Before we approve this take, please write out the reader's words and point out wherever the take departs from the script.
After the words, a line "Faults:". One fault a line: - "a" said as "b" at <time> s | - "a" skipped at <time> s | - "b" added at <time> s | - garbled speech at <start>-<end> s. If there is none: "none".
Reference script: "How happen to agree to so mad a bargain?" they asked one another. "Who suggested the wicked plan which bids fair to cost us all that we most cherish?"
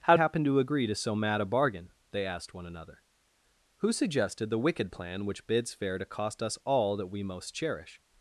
"How happen to agree to so mad a bargain?" they asked one another. "Who suggested the wicked plan which bids fair to cost us all that we most cherish?"
Faults:
none